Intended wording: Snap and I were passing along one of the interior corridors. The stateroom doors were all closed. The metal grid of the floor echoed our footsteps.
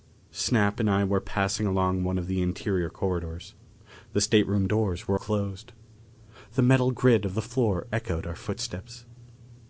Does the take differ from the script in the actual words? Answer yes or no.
yes